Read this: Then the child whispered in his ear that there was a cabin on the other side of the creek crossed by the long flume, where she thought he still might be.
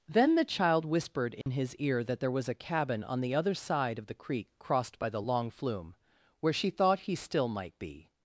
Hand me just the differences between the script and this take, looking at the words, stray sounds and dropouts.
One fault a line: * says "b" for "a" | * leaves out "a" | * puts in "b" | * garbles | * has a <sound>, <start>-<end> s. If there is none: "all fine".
* has a dropout, 1.4-1.5 s